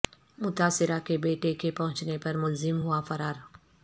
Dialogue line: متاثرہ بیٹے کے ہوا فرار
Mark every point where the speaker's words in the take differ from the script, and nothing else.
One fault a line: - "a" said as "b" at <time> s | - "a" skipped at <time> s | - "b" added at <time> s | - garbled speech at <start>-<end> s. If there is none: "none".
- "کے" added at 1.1 s
- "پہنچنے پر ملزم" added at 1.7 s